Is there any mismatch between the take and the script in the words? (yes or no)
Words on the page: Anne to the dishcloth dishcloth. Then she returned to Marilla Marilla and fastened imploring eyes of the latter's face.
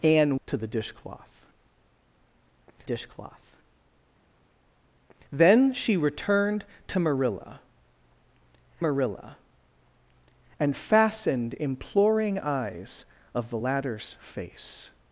no